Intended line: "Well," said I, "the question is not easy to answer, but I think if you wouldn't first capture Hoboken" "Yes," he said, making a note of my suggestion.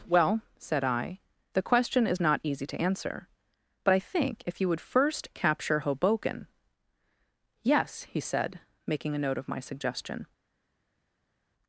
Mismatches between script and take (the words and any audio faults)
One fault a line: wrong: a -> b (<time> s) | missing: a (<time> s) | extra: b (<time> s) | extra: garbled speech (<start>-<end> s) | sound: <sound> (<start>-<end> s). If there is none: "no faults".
wrong: wouldn't -> would (4.7 s)